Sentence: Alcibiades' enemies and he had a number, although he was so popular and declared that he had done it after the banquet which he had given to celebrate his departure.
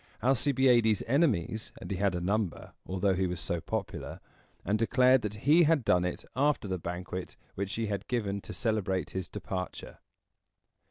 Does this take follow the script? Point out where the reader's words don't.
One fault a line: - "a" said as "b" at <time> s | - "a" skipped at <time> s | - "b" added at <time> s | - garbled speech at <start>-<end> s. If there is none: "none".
none